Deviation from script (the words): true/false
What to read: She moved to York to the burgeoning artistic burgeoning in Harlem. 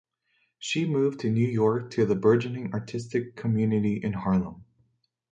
true